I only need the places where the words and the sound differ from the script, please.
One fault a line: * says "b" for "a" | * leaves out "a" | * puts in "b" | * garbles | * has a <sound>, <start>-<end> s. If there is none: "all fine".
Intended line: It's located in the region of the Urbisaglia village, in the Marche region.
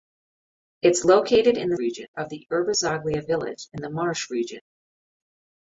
all fine